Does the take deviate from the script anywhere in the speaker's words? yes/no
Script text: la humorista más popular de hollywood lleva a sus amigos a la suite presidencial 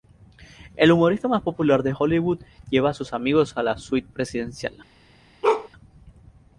yes